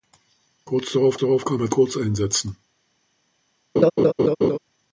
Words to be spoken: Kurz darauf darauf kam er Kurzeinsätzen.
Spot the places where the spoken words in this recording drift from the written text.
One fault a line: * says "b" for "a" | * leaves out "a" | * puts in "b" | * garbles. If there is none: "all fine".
all fine